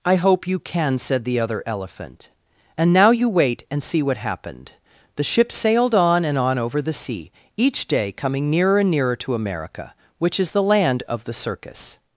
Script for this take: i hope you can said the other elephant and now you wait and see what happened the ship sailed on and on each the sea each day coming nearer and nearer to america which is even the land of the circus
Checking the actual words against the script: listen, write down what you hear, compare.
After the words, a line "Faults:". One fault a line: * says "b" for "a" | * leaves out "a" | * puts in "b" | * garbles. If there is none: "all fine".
i hope you can said the other elephant and now you wait and see what happened the ship sailed on and on over the sea each day coming nearer and nearer to america which is the land of the circus
Faults:
* says "over" for "each"
* leaves out "even"